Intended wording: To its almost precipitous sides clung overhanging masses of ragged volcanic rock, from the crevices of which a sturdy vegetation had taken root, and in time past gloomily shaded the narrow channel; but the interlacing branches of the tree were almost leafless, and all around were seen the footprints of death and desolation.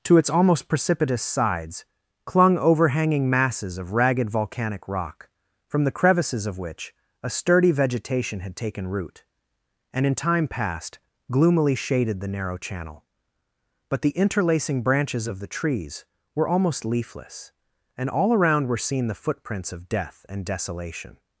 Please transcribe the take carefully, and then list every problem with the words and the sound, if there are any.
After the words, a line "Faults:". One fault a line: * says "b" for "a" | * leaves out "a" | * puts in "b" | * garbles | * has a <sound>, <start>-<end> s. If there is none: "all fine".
To its almost precipitous sides clung overhanging masses of ragged volcanic rock, from the crevices of which a sturdy vegetation had taken root, and in time past gloomily shaded the narrow channel; but the interlacing branches of the trees were almost leafless, and all around were seen the footprints of death and desolation.
Faults:
* says "trees" for "tree"